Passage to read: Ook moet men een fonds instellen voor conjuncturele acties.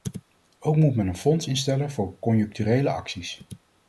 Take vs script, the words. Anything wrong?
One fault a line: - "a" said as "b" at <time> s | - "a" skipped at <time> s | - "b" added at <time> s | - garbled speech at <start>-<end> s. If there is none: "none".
none